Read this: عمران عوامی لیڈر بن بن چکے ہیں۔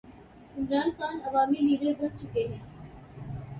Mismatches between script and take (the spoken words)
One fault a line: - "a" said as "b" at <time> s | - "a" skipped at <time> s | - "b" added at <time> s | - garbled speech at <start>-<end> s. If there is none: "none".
- "خان" added at 1.0 s
- "بن" skipped at 2.2 s